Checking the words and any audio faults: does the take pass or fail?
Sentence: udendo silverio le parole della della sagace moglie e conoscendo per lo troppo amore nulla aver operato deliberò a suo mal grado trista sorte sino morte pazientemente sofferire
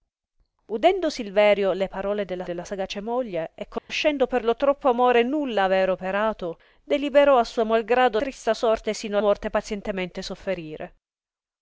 fail